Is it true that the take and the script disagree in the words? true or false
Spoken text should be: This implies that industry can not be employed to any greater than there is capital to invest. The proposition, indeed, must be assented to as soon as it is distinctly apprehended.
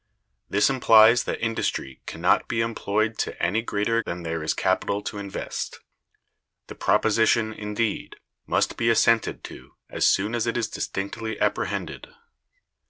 false